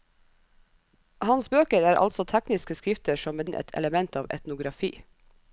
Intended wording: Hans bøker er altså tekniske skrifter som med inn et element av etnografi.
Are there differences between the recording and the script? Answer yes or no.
no